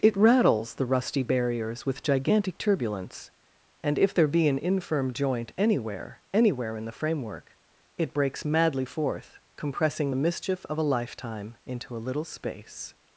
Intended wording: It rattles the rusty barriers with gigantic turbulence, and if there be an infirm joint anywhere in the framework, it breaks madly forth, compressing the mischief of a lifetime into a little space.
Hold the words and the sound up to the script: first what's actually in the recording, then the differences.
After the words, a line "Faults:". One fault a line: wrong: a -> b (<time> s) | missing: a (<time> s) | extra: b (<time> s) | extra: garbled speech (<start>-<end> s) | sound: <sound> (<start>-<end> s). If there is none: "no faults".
It rattles the rusty barriers with gigantic turbulence, and if there be an infirm joint anywhere anywhere in the framework, it breaks madly forth, compressing the mischief of a lifetime into a little space.
Faults:
extra: anywhere (6.3 s)